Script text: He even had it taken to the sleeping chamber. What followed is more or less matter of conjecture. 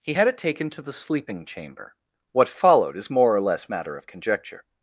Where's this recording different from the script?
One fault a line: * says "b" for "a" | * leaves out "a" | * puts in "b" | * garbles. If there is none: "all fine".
* leaves out "even"